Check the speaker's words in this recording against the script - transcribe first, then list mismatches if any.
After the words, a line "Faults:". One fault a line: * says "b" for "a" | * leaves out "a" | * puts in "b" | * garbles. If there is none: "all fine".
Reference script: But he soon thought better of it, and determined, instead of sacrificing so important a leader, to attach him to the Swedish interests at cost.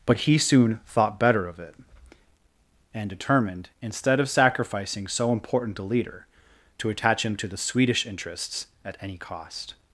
But he soon thought better of it, and determined, instead of sacrificing so important a leader, to attach him to the Swedish interests at any cost.
Faults:
* puts in "any"